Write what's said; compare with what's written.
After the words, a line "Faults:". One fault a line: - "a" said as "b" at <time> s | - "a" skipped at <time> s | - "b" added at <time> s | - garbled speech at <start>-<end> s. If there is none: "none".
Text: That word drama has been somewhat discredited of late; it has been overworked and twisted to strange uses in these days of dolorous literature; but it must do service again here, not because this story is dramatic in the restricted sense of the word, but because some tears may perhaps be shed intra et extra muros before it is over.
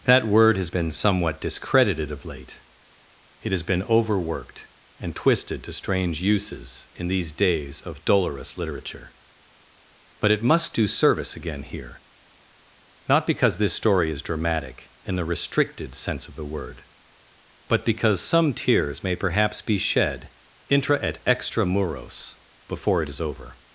That word has been somewhat discredited of late; it has been overworked and twisted to strange uses in these days of dolorous literature; but it must do service again here, not because this story is dramatic in the restricted sense of the word, but because some tears may perhaps be shed intra et extra muros before it is over.
Faults:
- "drama" skipped at 0.6 s